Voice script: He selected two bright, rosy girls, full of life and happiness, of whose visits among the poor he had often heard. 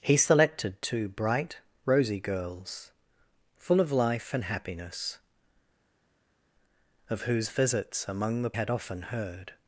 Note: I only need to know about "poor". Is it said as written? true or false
false